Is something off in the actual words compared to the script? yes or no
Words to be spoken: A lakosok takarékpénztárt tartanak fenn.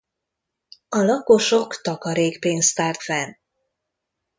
yes